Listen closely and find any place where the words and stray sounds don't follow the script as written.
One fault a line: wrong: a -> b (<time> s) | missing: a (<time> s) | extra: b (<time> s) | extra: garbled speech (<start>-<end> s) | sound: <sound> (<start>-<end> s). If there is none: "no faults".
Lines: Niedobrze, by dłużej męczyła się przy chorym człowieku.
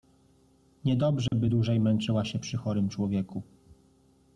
sound: dropout (1.3-1.3 s)